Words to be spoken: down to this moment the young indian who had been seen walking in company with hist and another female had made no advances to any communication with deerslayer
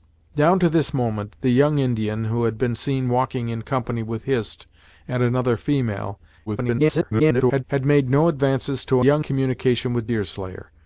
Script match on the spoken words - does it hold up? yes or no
no